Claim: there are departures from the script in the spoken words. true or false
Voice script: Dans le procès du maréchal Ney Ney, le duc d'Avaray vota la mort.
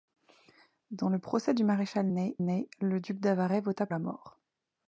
false